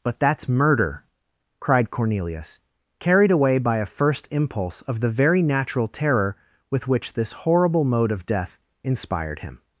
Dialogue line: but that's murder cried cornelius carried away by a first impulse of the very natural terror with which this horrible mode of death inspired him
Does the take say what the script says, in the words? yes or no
yes